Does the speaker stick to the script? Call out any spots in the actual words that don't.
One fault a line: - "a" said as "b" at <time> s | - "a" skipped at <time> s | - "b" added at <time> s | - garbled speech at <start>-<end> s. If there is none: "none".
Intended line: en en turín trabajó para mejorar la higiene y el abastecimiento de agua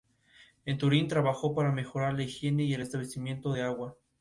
- "en" skipped at 0.8 s